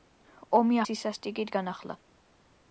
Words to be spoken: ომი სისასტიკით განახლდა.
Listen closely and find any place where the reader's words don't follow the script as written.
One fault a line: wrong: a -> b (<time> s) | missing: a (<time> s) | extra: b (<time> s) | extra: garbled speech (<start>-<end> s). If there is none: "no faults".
no faults